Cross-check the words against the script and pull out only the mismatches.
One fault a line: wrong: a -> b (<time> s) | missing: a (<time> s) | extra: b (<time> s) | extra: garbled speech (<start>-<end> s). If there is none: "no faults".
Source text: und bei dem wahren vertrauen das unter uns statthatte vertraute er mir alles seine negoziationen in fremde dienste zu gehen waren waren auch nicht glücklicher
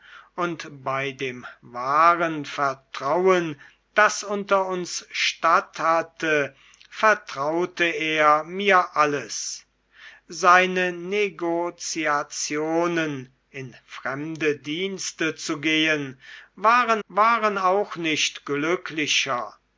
no faults